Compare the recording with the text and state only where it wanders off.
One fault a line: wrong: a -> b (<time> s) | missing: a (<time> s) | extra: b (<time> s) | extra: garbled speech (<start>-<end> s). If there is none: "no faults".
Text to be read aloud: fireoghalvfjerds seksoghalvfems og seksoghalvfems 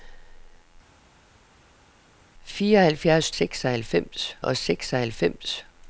no faults